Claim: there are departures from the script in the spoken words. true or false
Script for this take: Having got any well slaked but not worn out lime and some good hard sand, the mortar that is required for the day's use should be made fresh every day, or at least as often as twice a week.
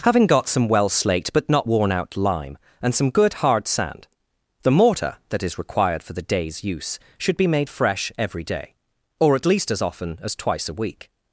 true